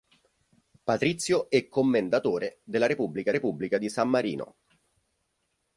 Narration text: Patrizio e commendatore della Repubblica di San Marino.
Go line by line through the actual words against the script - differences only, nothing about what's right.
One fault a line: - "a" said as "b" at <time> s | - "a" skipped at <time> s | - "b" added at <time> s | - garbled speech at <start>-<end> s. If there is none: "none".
- "Repubblica" added at 3.3 s